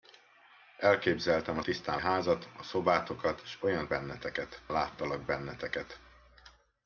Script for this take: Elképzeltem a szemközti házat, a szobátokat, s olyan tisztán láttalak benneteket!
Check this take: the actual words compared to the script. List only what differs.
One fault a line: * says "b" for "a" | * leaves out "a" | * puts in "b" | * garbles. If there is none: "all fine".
* says "tisztán" for "szemközti"
* says "benneteket" for "tisztán"